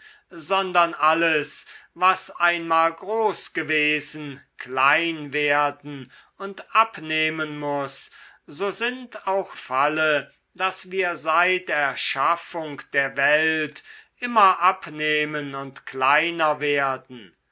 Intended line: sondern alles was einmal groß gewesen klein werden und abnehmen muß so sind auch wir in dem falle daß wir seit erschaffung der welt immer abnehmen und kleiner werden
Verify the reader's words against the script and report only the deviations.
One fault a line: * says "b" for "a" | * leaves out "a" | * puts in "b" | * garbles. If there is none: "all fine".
* leaves out "wir in dem"